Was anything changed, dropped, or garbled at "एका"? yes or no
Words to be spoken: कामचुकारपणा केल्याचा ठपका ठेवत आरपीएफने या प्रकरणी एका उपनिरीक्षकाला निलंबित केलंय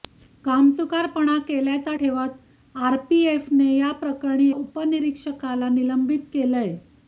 yes